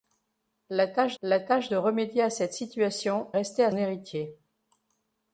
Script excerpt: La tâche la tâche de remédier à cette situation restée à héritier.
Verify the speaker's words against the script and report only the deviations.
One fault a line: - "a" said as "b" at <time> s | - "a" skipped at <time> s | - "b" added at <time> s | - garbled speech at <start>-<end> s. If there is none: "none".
none